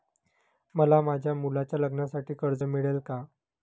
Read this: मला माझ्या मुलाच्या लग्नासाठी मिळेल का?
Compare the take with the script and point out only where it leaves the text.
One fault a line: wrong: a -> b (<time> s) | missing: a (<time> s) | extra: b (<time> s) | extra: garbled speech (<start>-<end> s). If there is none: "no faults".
extra: कर्ज (2.4 s)